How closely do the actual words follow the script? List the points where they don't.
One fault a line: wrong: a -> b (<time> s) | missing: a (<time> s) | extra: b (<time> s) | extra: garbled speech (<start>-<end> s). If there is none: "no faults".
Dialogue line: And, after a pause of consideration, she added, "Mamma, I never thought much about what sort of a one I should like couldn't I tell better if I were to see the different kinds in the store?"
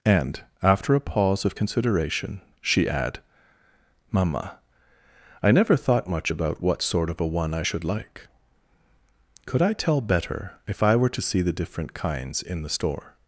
wrong: added -> add (2.9 s)
wrong: couldn't -> could (9.5 s)